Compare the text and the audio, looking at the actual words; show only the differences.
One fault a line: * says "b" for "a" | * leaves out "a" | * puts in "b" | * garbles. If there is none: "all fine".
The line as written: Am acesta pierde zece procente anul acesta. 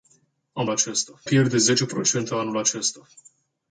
all fine